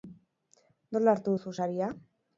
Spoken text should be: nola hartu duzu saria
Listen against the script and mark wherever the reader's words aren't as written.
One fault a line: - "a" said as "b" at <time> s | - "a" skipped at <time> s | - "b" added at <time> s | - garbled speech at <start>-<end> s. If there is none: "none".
none